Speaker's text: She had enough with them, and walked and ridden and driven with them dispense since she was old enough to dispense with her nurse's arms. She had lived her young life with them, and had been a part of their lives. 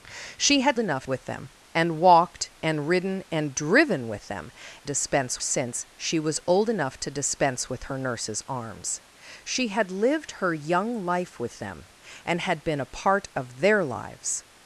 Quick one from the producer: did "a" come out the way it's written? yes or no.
yes